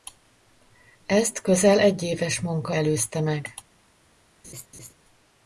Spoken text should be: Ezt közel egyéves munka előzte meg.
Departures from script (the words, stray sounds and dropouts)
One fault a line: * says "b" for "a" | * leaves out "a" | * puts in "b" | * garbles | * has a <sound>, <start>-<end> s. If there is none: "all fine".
* has a laugh, 4.4-4.9 s